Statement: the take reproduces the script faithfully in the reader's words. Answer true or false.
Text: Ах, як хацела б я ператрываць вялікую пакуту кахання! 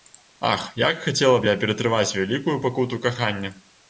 true